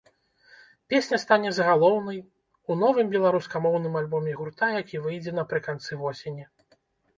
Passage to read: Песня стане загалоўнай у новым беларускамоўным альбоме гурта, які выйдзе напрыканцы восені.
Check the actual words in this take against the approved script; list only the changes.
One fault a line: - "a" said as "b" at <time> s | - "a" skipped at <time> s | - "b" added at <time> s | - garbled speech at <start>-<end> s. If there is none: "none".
none